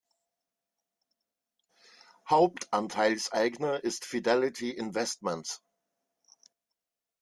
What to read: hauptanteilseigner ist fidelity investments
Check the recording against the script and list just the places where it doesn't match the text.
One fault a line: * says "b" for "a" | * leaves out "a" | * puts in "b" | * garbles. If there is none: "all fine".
all fine